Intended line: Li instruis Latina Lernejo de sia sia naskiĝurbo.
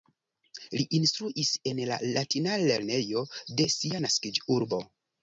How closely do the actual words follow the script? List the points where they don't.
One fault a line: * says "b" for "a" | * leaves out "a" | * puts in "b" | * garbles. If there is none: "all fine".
* puts in "en la"
* leaves out "sia"